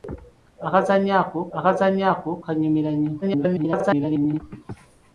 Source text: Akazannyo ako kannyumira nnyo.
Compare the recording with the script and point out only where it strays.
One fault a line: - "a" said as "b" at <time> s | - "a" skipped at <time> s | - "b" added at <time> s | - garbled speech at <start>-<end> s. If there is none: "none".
- "akazannyo ako" added at 1.6 s
- garbled speech at 3.2-4.4 s